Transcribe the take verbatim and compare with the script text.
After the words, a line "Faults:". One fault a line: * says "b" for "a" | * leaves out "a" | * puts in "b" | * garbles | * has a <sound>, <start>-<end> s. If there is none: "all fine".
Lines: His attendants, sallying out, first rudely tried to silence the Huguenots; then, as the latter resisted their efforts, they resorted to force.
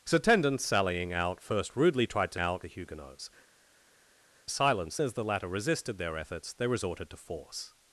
His attendants, sallying out, first rudely tried to out the Huguenots; silence, as the latter resisted their efforts, they resorted to force.
Faults:
* says "out" for "silence"
* says "silence" for "then"